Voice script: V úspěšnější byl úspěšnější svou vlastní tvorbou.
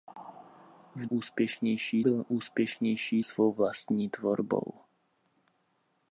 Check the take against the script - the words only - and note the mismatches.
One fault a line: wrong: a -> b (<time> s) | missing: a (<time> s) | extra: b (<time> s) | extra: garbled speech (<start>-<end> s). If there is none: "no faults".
no faults